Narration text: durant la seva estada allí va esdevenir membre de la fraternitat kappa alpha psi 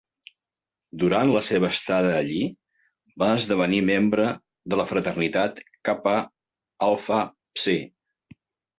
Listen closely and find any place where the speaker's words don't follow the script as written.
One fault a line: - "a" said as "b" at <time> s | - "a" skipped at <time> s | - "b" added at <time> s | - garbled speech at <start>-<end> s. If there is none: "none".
none